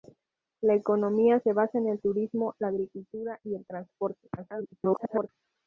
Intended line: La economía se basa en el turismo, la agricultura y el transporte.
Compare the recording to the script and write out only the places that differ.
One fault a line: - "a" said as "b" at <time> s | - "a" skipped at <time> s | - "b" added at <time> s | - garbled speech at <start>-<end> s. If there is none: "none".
- garbled speech at 4.4-5.3 s